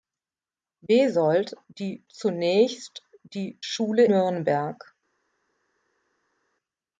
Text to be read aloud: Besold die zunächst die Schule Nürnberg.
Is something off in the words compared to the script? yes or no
no